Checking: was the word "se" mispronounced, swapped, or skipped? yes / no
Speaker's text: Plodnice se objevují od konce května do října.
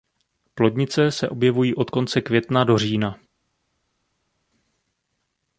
no